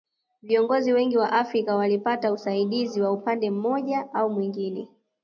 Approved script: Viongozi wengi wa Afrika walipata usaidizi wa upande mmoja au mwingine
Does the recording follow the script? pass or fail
pass